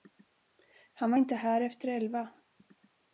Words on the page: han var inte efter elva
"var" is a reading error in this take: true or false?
false